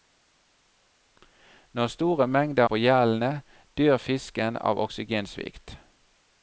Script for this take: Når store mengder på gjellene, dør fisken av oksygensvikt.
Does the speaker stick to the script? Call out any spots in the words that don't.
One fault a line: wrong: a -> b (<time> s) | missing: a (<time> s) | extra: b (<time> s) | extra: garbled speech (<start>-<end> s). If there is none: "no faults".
no faults